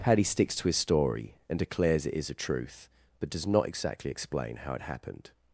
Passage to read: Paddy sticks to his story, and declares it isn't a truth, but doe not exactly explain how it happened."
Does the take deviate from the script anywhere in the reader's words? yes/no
yes